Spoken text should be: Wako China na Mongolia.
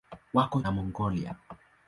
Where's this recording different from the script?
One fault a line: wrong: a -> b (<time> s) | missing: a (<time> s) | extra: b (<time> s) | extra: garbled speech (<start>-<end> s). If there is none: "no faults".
missing: China (0.6 s)